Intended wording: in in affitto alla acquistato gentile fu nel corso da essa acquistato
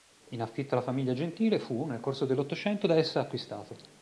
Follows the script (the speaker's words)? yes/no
no